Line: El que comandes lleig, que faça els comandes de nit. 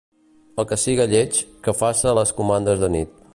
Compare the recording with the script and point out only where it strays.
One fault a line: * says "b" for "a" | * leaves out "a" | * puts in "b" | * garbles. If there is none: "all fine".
* says "siga" for "comandes"
* says "les" for "els"